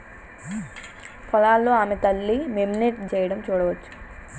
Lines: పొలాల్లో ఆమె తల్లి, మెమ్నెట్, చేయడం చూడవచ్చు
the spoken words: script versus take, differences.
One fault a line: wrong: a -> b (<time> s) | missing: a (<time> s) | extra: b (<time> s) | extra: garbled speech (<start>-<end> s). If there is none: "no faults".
no faults